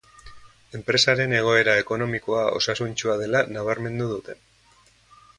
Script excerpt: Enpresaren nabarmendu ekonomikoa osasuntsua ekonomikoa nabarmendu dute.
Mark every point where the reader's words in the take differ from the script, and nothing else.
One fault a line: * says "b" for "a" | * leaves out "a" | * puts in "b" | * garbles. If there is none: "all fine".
* says "egoera" for "nabarmendu"
* says "dela" for "ekonomikoa"